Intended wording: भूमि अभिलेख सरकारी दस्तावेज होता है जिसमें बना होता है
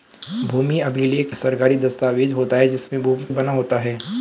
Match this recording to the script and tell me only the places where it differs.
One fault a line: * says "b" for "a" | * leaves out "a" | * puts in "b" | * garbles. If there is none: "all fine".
all fine